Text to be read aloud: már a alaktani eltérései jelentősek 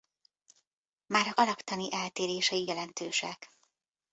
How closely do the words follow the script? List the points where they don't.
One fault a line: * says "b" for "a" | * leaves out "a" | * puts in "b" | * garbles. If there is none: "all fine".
all fine